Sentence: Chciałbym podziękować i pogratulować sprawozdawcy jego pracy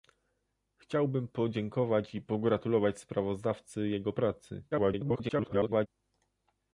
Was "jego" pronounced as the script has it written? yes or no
yes